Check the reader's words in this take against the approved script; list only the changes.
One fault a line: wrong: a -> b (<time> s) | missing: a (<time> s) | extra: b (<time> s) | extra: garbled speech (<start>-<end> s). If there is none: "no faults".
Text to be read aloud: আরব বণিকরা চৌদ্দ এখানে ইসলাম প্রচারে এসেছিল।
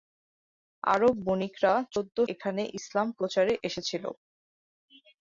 no faults